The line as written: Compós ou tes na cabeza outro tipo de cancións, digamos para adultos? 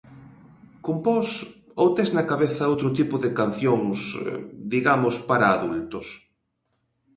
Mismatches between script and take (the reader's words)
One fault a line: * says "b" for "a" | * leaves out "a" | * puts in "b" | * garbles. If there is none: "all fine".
all fine